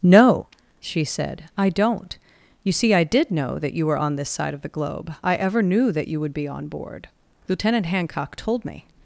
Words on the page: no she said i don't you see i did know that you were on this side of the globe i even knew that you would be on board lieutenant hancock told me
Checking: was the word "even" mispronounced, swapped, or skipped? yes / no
yes